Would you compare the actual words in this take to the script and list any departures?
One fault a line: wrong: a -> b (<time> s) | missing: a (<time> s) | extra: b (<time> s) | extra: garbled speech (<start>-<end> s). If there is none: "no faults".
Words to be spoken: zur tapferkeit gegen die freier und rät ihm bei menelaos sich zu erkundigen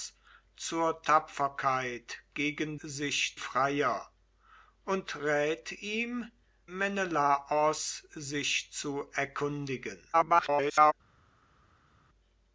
wrong: die -> sich (2.8 s)
missing: bei (6.3 s)
extra: garbled speech (10.1-10.9 s)